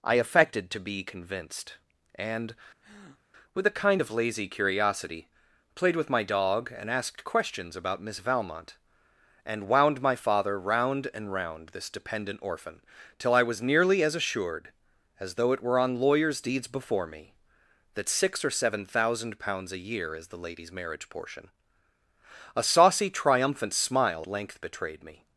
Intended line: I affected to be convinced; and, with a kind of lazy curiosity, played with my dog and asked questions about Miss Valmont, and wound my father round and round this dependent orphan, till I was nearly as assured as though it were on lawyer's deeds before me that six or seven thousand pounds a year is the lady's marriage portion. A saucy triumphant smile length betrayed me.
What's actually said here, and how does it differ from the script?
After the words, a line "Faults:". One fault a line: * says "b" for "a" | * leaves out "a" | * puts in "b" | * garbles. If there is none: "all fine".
I affected to be convinced; and, with a kind of lazy curiosity, played with my dog and asked questions about Miss Valmont, and wound my father round and round this dependent orphan, till I was nearly as assured as though it were on lawyer's deeds before me that six or seven thousand pounds a year is the lady's marriage portion. A saucy triumphant smile length betrayed me.
Faults:
all fine